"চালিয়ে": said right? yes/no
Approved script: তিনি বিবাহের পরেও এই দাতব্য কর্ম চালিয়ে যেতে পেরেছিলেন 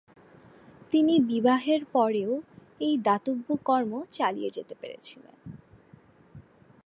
yes